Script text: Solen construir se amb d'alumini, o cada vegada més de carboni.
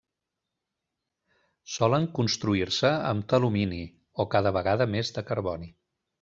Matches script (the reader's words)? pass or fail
pass